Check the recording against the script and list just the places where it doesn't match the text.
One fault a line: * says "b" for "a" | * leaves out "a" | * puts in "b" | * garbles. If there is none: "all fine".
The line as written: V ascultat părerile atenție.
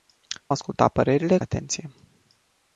all fine